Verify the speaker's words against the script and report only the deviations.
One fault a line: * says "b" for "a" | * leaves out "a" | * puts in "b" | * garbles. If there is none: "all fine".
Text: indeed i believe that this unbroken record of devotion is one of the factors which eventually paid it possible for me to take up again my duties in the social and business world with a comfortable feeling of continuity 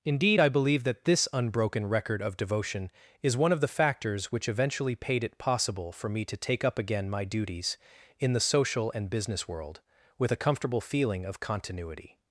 all fine